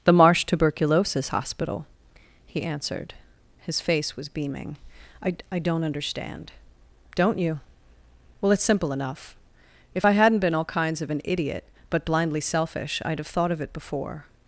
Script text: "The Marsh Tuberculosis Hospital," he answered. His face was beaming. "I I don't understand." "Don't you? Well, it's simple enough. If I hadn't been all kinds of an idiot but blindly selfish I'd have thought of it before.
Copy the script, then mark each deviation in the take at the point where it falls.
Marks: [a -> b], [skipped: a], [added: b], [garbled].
"The Marsh Tuberculosis Hospital," he answered. His face was beaming. "I I don't understand." "Don't you? Well, it's simple enough. If I hadn't been all kinds of an idiot but blindly selfish I'd have thought of it before.